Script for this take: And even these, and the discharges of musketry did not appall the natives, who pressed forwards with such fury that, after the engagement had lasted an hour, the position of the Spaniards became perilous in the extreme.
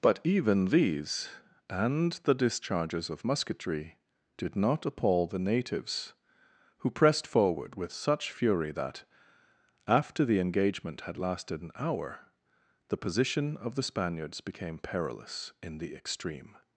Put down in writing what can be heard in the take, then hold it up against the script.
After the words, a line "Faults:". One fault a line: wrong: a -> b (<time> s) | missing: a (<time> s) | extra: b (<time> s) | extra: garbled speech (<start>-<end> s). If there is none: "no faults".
But even these, and the discharges of musketry did not appall the natives, who pressed forward with such fury that, after the engagement had lasted an hour, the position of the Spaniards became perilous in the extreme.
Faults:
wrong: And -> But (0.0 s)
wrong: forwards -> forward (7.3 s)